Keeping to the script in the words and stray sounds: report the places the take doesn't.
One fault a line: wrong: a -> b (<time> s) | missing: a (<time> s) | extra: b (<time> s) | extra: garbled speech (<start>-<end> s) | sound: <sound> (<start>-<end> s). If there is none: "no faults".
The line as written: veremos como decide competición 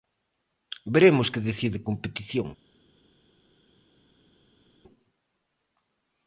wrong: como -> que (1.3 s)